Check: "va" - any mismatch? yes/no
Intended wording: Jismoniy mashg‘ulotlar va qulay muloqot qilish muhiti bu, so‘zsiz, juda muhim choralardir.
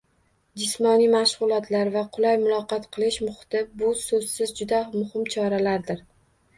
no